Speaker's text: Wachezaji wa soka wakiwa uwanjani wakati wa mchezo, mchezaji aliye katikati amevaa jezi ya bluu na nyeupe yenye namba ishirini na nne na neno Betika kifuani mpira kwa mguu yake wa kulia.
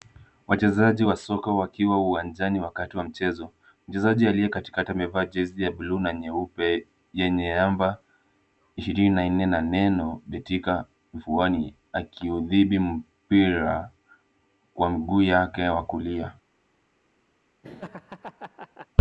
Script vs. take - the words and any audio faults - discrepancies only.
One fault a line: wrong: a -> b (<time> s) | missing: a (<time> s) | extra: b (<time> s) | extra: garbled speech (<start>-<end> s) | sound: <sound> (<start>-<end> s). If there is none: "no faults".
extra: akiudhibiti (11.9 s)
sound: laugh (17.6-18.9 s)